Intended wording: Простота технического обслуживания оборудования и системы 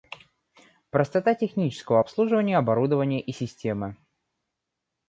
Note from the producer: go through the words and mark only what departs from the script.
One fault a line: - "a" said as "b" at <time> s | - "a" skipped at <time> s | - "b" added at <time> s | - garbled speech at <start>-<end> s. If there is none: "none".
none